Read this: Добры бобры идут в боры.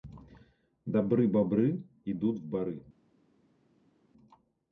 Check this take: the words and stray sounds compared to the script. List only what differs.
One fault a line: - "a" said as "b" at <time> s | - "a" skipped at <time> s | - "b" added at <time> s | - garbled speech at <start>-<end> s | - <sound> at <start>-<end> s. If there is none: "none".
none